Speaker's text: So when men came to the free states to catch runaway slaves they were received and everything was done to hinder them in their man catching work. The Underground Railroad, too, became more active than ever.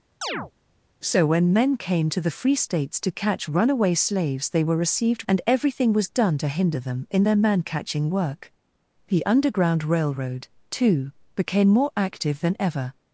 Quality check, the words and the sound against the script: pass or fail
fail